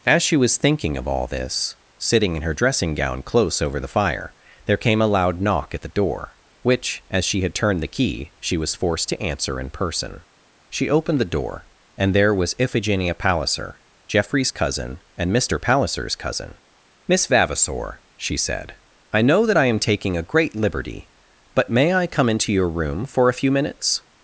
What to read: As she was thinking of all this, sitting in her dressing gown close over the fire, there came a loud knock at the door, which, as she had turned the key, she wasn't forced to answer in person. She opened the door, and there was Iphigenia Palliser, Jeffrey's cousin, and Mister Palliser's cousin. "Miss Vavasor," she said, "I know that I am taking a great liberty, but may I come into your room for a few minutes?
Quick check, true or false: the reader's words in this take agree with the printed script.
false